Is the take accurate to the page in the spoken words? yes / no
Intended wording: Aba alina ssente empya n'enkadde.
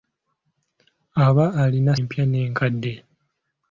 no